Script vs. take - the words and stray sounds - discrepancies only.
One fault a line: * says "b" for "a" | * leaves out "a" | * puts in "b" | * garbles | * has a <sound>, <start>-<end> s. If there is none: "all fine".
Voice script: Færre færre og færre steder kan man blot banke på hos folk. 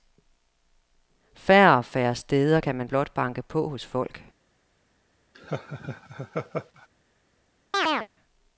* leaves out "færre"
* has a laugh, 5.3-6.9 s
* has a chirp, 7.7-8.1 s